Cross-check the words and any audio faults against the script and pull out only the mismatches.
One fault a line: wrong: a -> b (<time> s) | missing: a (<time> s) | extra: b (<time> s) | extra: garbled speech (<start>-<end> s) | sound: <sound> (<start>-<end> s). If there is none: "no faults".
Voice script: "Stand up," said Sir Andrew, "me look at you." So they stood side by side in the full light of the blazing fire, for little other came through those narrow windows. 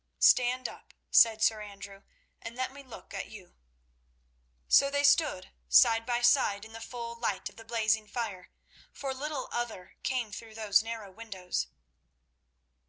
extra: and let (2.4 s)